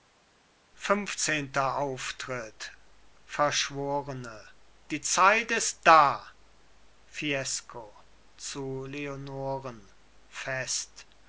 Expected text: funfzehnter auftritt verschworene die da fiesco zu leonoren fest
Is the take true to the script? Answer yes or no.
no